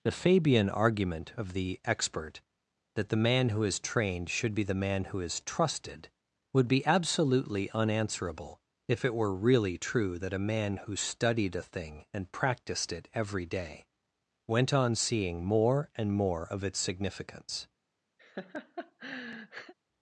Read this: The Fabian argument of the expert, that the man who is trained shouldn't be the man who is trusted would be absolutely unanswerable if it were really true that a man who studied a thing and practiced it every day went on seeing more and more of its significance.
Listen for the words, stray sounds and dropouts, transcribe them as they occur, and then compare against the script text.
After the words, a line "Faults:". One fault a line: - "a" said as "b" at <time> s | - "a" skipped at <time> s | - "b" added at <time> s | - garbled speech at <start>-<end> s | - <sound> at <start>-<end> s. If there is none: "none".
The Fabian argument of the expert, that the man who is trained should be the man who is trusted would be absolutely unanswerable if it were really true that a man who studied a thing and practiced it every day went on seeing more and more of its significance.
Faults:
- "shouldn't" said as "should" at 4.3 s
- laugh at 18.2-19.7 s